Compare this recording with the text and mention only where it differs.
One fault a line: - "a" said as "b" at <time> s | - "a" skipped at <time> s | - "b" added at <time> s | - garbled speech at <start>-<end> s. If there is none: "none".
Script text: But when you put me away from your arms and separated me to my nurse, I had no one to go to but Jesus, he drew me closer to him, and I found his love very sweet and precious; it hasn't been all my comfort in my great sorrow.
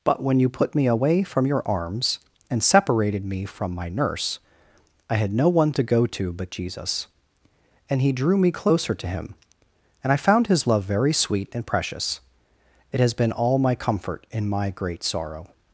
- "to" said as "from" at 3.5 s
- "and" added at 7.9 s
- "hasn't" said as "has" at 13.0 s